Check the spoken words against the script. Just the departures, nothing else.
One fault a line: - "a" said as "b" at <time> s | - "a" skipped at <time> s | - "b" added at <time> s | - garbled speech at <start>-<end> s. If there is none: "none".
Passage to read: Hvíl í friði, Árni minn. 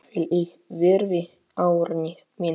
none